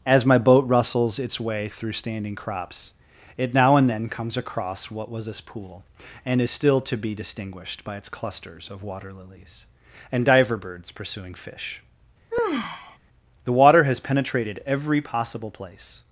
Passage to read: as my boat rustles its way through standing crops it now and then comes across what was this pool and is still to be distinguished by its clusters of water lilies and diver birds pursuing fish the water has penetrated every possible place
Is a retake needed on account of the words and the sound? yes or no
yes